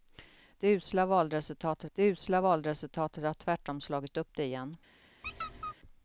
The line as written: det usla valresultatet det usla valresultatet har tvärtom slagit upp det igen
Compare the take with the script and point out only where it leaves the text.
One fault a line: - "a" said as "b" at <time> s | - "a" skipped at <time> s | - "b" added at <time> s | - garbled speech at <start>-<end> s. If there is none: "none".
none